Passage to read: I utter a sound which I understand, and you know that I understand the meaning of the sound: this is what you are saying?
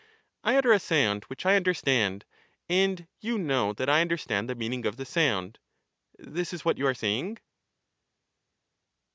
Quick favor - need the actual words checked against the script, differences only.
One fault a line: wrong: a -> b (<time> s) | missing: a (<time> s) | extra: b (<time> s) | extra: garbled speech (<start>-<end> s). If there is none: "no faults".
no faults